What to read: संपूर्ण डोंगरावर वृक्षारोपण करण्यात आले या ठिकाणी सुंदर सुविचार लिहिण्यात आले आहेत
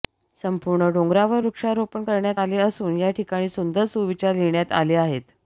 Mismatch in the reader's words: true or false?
true